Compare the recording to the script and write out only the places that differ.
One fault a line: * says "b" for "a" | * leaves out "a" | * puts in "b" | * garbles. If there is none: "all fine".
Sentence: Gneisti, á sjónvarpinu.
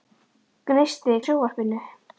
all fine